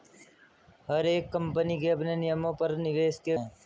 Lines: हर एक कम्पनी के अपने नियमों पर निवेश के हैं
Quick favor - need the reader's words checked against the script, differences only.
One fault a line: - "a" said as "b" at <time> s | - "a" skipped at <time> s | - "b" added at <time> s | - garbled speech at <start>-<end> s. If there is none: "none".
none